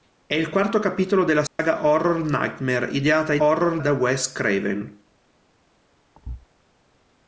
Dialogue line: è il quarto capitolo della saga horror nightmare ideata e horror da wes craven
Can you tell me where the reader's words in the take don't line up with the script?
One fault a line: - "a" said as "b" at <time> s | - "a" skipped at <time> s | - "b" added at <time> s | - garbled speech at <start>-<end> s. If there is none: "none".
none